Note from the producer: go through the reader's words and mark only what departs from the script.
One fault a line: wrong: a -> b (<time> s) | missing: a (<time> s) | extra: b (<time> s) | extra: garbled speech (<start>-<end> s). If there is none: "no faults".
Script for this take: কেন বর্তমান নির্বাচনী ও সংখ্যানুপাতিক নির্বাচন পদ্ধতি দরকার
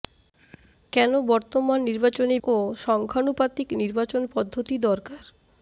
no faults